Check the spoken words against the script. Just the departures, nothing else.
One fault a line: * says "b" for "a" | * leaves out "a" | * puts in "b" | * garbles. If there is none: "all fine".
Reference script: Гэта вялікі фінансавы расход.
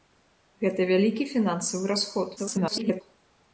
* garbles